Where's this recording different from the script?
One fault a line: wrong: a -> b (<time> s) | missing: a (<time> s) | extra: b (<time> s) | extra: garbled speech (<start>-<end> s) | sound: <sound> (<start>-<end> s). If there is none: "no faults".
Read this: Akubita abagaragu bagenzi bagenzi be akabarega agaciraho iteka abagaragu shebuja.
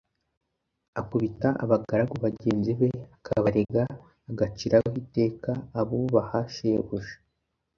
missing: bagenzi (2.7 s)
sound: dropout (3.6-3.7 s)
wrong: abagaragu -> abubaha (5.8 s)